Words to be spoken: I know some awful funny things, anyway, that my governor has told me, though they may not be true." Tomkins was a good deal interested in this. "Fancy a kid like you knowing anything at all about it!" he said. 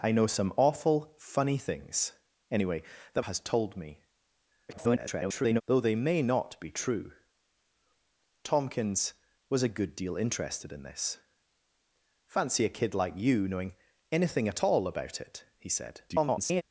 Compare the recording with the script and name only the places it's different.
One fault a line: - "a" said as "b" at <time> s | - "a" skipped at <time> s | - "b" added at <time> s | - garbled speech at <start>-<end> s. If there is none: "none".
- "my governor" skipped at 3.2 s
- garbled speech at 4.7-5.6 s
- garbled speech at 16.1-16.6 s